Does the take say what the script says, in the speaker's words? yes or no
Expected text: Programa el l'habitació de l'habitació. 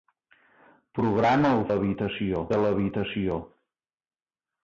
yes